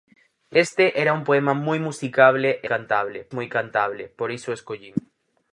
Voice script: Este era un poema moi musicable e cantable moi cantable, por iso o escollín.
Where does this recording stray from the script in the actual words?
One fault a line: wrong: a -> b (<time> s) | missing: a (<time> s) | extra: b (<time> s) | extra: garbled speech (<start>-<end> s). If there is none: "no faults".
no faults